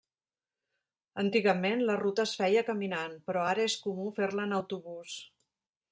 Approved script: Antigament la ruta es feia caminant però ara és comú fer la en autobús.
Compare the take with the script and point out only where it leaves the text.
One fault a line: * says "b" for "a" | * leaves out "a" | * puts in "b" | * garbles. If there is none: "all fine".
all fine